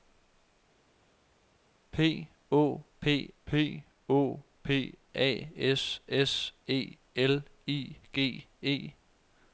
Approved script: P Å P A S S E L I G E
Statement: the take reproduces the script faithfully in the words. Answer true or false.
false